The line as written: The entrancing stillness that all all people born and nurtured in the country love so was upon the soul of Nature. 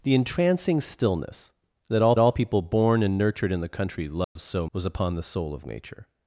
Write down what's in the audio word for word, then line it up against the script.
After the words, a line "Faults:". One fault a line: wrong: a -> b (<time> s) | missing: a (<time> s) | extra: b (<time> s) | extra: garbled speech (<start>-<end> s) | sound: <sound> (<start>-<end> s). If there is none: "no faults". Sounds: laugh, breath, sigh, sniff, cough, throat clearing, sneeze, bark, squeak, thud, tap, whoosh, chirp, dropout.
The entrancing stillness that all all people born and nurtured in the country love so was upon the soul of Nature.
Faults:
sound: dropout (4.2-4.4 s)